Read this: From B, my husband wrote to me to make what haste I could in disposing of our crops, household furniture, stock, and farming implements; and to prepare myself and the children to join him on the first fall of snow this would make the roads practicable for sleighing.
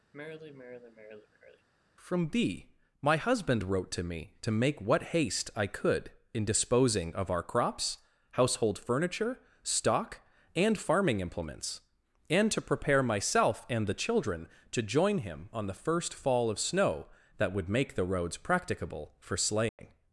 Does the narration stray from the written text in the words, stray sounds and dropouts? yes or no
yes